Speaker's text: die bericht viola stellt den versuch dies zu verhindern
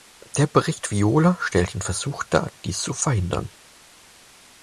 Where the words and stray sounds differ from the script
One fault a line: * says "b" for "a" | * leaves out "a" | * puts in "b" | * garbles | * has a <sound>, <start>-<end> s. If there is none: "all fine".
* says "der" for "die"
* puts in "dar"